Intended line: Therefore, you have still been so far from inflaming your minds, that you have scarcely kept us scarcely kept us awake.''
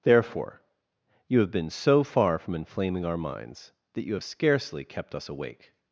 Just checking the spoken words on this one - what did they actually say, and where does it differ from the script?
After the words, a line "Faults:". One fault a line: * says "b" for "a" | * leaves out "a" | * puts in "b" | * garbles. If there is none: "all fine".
Therefore, you have been so far from inflaming our minds, that you have scarcely kept us awake.''
Faults:
* leaves out "still"
* says "our" for "your"
* leaves out "scarcely kept us"